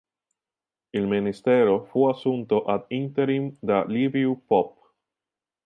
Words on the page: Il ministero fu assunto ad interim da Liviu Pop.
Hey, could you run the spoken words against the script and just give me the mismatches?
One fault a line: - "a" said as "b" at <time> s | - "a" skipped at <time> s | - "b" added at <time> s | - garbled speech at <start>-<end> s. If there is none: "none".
none